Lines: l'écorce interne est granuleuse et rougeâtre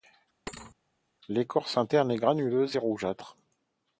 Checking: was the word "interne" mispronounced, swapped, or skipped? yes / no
no